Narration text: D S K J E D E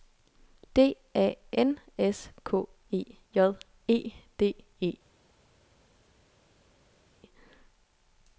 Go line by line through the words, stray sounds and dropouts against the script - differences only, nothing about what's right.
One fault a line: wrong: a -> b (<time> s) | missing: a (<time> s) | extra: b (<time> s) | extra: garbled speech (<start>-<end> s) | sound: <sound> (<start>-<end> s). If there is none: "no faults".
extra: A N (1.1 s)
extra: E (2.9 s)